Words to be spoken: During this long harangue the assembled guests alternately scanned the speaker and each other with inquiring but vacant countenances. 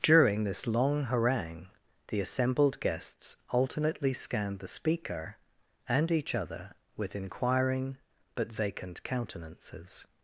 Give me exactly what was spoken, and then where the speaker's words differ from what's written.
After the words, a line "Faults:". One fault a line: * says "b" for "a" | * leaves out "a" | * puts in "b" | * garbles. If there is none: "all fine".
During this long harangue the assembled guests alternately scanned the speaker and each other with inquiring but vacant countenances.
Faults:
all fine